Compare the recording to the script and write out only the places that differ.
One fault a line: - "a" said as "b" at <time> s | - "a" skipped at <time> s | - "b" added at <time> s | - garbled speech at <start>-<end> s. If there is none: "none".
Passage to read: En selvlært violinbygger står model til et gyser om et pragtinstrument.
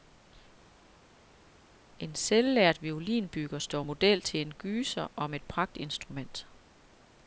- "et" said as "en" at 4.4 s